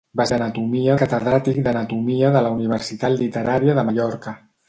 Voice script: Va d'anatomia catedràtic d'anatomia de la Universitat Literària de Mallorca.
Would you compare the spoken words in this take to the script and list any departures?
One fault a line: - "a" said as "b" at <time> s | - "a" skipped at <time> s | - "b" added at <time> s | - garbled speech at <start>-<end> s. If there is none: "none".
none